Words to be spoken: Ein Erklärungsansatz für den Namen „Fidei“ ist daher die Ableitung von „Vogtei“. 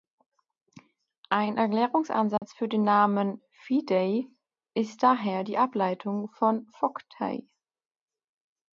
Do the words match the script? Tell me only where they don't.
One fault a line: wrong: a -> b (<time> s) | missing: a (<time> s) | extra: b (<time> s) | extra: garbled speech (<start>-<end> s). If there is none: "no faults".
no faults